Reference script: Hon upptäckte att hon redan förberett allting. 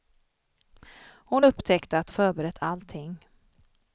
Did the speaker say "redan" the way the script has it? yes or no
no